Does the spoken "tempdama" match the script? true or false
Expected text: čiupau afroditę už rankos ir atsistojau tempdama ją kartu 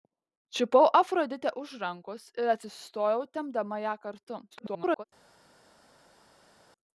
true